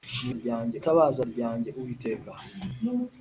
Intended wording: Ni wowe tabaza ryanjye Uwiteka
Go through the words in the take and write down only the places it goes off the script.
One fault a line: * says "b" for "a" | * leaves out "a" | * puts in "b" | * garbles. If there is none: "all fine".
* says "ryanjye" for "wowe"